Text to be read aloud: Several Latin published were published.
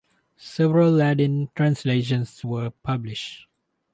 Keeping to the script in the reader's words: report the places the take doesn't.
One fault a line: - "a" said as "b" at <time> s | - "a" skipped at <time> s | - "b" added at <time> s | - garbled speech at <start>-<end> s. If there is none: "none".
- "published" said as "translations" at 1.6 s